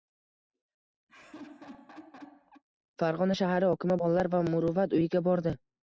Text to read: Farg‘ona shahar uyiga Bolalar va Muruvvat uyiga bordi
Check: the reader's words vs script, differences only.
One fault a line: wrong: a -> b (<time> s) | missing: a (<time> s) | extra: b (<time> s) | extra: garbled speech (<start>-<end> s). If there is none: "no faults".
wrong: uyiga -> hokimi (3.7 s)